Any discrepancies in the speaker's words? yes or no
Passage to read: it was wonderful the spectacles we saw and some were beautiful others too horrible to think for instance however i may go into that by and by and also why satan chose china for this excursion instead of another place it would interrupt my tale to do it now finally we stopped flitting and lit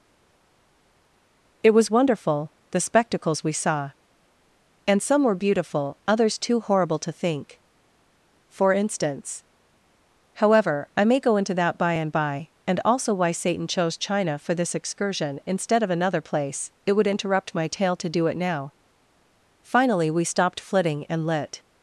no